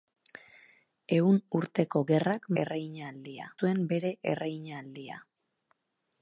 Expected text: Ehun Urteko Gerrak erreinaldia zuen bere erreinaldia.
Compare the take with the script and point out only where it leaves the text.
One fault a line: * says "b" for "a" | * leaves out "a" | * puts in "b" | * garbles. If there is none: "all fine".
all fine